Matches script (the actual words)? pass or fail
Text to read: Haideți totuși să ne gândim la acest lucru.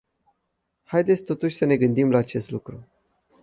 pass